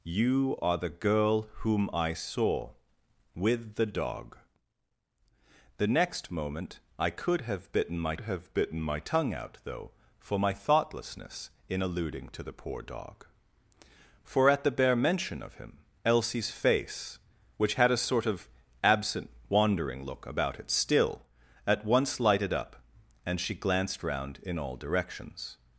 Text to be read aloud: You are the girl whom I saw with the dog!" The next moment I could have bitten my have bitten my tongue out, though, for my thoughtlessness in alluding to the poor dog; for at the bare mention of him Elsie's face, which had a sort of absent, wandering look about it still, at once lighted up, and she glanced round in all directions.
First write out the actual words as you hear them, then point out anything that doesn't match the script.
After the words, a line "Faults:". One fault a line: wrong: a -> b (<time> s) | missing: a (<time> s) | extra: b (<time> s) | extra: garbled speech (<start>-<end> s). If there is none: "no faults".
You are the girl whom I saw with the dog!" The next moment I could have bitten my have bitten my tongue out, though, for my thoughtlessness in alluding to the poor dog; for at the bare mention of him Elsie's face, which had a sort of absent, wandering look about it still, at once lighted up, and she glanced round in all directions.
Faults:
no faults